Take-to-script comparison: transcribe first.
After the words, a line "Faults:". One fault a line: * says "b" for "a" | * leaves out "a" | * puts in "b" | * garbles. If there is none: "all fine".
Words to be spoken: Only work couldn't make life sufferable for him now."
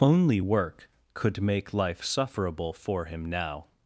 Only work could make life sufferable for him now."
Faults:
* says "could" for "couldn't"